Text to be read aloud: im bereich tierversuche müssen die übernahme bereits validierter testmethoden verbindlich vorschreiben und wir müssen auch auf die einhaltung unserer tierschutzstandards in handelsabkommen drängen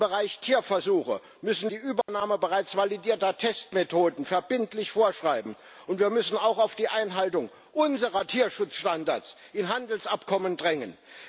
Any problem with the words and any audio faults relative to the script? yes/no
yes